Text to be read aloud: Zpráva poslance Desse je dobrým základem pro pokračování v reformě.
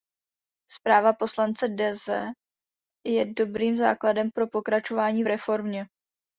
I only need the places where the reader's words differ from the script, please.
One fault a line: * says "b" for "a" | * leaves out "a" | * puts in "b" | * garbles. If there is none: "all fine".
all fine